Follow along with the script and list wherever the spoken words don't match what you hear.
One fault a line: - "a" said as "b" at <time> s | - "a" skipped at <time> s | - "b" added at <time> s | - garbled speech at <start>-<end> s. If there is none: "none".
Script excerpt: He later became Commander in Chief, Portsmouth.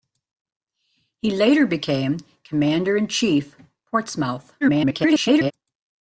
- garbled speech at 4.6-5.5 s